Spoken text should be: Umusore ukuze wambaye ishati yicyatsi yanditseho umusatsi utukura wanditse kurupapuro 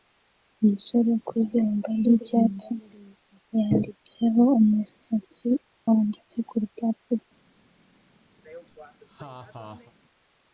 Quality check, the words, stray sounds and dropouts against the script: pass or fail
fail